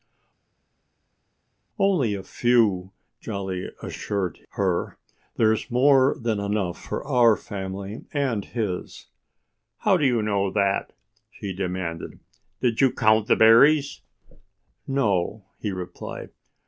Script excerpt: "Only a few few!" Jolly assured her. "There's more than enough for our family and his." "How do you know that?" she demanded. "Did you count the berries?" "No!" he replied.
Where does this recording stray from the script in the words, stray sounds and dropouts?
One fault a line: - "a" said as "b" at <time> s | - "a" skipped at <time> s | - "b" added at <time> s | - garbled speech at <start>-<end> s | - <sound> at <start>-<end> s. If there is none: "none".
- "few" skipped at 2.9 s